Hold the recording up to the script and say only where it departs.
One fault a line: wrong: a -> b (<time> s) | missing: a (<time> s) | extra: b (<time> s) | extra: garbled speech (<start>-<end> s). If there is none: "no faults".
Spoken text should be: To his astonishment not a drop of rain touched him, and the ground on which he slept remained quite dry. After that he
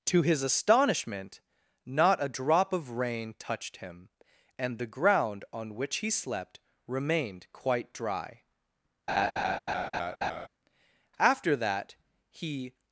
no faults